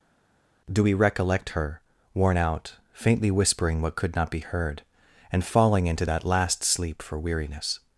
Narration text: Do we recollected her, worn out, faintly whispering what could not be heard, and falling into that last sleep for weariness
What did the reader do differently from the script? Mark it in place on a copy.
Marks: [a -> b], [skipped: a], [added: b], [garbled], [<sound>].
Do we [recollected -> recollect] her, worn out, faintly whispering what could not be heard, and falling into that last sleep for weariness